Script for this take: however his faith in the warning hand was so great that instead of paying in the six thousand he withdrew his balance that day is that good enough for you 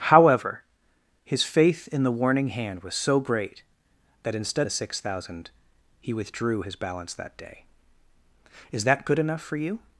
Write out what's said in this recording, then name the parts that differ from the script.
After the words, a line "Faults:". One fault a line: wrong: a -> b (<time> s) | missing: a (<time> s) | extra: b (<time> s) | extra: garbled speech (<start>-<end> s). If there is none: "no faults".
however his faith in the warning hand was so great that instead the six thousand he withdrew his balance that day is that good enough for you
Faults:
missing: of paying in (4.7 s)